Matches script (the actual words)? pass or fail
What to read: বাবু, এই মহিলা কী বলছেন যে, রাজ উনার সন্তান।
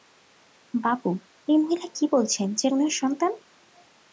fail